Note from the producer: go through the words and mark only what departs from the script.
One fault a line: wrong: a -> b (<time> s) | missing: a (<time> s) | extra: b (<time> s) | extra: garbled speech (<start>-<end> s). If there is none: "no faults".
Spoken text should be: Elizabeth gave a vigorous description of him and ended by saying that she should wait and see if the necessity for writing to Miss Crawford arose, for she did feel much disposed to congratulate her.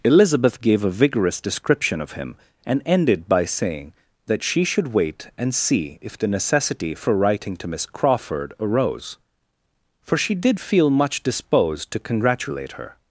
no faults